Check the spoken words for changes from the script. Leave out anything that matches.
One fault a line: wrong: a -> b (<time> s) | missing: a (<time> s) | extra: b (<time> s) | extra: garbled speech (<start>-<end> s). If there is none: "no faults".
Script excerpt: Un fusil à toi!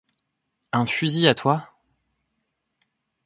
no faults